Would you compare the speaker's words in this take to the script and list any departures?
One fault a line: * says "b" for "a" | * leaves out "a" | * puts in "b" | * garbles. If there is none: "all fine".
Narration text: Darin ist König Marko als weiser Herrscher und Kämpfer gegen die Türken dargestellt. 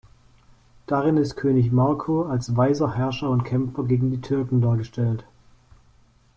all fine